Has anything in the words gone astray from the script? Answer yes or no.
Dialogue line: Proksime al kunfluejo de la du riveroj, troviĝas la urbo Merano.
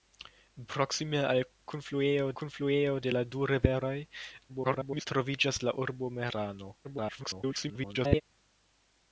yes